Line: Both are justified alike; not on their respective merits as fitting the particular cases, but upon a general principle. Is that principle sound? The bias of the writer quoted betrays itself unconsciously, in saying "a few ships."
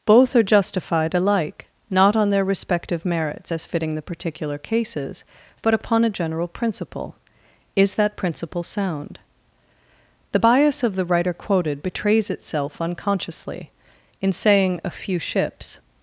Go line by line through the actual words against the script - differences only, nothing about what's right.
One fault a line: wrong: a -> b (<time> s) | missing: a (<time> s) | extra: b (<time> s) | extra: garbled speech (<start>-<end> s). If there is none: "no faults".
no faults